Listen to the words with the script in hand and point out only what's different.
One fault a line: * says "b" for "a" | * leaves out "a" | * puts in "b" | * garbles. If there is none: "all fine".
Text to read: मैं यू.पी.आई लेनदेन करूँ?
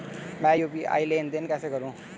* puts in "कैसे"